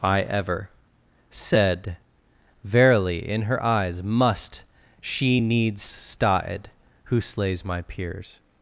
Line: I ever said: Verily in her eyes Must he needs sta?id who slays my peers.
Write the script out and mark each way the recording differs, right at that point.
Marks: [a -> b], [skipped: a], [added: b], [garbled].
I ever said: Verily in her eyes Must [he -> she] needs sta?id who slays my peers.